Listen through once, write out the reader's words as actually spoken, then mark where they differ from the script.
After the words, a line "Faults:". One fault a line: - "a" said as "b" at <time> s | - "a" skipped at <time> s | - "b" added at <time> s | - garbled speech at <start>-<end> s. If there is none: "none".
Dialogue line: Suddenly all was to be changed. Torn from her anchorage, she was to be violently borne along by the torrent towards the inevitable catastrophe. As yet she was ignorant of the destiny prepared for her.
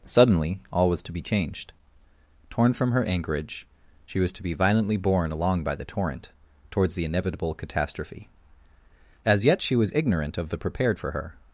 Suddenly all was to be changed. Torn from her anchorage, she was to be violently borne along by the torrent towards the inevitable catastrophe. As yet she was ignorant of the prepared for her.
Faults:
- "destiny" skipped at 10.6 s